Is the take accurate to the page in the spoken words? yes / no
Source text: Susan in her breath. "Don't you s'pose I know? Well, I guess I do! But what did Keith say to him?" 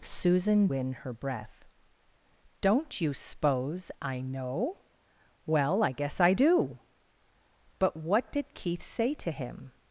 yes